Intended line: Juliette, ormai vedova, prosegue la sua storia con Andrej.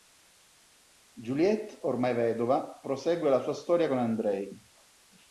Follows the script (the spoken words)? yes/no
yes